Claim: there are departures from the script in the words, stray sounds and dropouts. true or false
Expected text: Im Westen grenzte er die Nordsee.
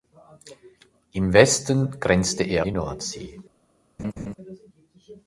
true